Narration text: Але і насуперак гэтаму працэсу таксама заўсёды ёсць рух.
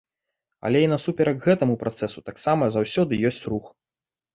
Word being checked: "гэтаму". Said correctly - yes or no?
yes